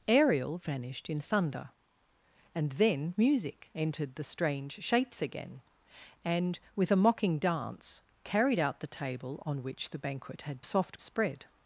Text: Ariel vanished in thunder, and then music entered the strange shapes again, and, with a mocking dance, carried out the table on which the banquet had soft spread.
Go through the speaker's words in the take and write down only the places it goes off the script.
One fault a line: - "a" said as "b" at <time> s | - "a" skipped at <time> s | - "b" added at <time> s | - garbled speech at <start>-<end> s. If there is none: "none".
none